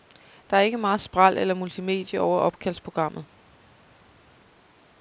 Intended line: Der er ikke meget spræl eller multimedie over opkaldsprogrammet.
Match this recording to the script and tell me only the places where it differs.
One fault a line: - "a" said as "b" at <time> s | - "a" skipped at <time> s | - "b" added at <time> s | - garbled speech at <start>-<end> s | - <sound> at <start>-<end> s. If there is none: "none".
none